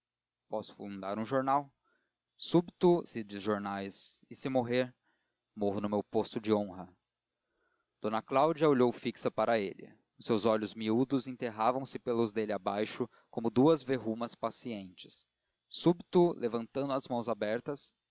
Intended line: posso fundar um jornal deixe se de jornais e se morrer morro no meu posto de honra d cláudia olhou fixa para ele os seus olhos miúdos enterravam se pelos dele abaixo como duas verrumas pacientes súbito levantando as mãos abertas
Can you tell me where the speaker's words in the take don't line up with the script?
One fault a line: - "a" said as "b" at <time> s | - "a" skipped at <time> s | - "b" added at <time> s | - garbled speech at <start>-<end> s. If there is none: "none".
- "deixe" said as "súbito" at 2.4 s